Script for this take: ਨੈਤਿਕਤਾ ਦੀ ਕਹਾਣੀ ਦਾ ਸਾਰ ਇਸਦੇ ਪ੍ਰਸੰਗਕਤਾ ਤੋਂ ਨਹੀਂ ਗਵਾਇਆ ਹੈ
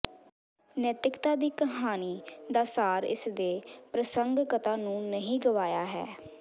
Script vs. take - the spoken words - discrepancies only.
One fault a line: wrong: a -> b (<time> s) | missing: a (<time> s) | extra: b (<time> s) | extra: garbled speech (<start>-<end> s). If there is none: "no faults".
wrong: ਤੋਂ -> ਨੂੰ (4.8 s)